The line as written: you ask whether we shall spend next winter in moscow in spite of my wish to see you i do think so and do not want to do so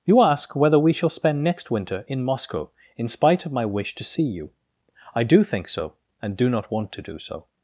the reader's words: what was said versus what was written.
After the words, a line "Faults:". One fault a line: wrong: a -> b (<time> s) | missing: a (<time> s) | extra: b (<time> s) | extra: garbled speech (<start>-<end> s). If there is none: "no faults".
you ask whether we shall spend next winter in moscow in spite of my wish to see you i do think so and do not want to do so
Faults:
no faults